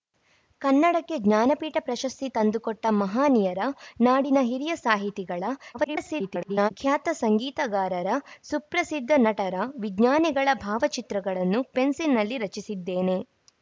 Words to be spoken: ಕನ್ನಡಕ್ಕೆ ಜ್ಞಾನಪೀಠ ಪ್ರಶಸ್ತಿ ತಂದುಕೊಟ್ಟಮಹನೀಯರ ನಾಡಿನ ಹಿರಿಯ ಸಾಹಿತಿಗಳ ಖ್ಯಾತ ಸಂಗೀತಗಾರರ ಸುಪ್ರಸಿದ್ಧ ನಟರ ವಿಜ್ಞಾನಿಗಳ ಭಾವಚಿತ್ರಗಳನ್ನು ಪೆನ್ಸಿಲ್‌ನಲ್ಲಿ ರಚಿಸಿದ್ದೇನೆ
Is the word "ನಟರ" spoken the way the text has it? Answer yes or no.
yes